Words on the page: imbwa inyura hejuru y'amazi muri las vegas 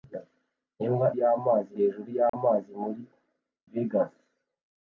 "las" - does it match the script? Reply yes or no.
no